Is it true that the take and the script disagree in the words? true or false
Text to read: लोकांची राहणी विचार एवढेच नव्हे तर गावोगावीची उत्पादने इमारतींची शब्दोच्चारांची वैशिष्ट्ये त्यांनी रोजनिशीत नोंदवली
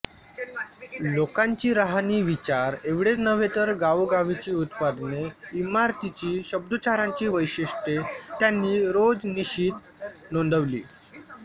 false